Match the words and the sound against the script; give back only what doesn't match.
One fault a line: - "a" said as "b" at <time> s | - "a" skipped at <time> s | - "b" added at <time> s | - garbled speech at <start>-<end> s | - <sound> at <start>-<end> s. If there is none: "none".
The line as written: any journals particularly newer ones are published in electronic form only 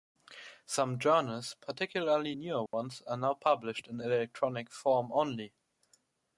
- "any" said as "some" at 0.7 s
- dropout at 2.7-2.7 s
- "now" added at 3.2 s